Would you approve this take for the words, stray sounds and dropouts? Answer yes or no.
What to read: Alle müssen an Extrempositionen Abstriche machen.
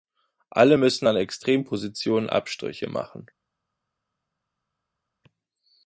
yes